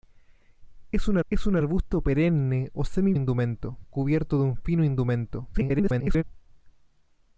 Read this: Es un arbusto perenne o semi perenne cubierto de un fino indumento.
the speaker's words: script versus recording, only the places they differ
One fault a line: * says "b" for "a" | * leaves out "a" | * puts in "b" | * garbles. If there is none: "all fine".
* puts in "es un"
* says "indumento" for "perenne"
* garbles